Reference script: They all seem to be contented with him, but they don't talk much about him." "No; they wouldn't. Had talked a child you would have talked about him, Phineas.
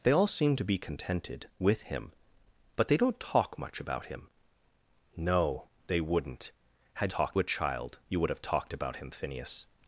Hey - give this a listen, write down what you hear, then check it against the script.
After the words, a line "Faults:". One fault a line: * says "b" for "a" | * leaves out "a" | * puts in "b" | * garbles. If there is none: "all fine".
They all seem to be contented with him, but they don't talk much about him." "No; they wouldn't. Had talked a child you would have talked about him, Phineas.
Faults:
all fine